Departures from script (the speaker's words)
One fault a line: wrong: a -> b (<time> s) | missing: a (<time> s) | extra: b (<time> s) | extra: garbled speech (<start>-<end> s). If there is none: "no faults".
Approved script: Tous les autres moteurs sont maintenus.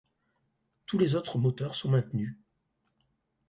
no faults